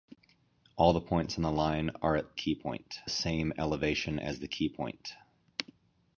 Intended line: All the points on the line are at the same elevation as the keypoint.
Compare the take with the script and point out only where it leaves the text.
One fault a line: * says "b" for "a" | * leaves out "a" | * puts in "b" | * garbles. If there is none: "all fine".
* says "keypoint" for "the"